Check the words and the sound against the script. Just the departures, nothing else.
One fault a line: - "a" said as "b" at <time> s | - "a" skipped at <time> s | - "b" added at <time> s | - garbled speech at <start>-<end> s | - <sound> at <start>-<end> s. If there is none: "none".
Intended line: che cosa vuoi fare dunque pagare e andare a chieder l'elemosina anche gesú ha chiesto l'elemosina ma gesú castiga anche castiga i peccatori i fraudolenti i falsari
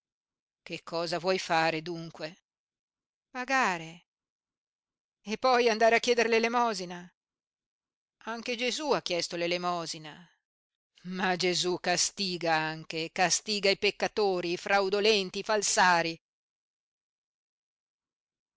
- "poi" added at 5.4 s